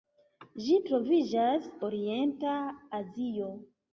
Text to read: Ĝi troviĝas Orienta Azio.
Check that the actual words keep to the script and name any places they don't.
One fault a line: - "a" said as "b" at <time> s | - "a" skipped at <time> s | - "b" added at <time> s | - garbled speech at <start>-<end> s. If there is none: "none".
none